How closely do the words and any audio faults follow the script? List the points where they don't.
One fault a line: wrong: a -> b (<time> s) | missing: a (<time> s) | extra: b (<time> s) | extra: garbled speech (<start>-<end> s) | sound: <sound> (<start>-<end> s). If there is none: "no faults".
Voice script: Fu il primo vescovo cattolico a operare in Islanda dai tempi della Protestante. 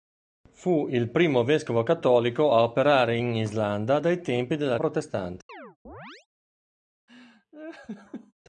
sound: chirp (5.5-6.3 s)
sound: laugh (7.1-8.3 s)